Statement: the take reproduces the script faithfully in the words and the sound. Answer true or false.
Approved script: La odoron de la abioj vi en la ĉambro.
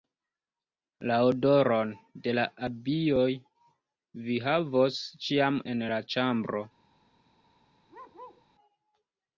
false